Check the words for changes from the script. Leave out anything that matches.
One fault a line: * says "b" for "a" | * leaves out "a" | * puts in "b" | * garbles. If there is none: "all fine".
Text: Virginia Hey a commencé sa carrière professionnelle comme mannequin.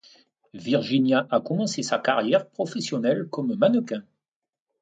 * leaves out "Hey"